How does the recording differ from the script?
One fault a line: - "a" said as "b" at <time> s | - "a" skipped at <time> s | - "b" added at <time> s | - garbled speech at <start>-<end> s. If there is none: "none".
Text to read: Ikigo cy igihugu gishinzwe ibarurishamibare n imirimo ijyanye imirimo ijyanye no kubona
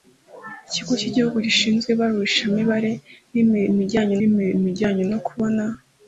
none